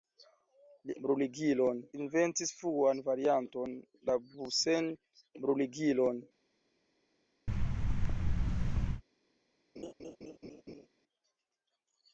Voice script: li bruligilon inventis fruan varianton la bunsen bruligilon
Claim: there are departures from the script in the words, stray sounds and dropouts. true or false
true